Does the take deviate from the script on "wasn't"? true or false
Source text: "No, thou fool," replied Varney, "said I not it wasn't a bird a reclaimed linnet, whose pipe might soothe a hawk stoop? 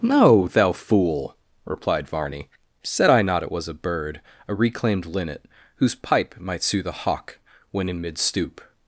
true